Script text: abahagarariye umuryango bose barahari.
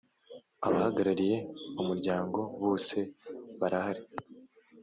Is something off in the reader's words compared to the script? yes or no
no